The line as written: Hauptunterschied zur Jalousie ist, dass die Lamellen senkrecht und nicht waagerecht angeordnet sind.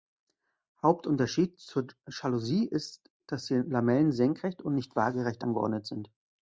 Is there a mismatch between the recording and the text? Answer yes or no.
no